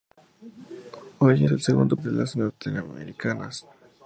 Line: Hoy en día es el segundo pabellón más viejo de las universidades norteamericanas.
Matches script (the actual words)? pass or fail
fail